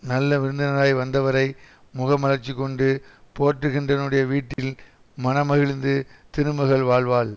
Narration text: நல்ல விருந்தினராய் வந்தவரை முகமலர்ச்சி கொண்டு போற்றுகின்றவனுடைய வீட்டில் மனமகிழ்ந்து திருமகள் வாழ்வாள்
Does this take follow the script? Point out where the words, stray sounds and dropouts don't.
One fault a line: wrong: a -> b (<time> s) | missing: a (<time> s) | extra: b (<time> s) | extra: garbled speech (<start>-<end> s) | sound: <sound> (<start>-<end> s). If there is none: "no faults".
sound: dropout (4.5-4.6 s)